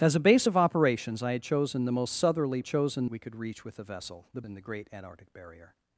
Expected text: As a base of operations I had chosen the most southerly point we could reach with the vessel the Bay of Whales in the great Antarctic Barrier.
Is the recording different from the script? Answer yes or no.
yes